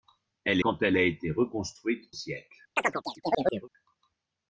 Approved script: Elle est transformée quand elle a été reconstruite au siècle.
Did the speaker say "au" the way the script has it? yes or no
no